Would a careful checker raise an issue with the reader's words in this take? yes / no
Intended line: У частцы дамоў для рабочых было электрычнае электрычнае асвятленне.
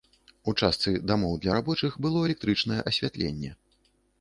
yes